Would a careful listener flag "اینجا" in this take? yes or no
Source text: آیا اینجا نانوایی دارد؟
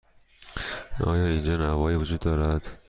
no